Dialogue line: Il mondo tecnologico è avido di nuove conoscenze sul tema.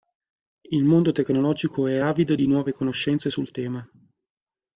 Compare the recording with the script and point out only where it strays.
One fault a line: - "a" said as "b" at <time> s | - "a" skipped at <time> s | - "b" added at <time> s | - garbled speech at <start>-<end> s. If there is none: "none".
none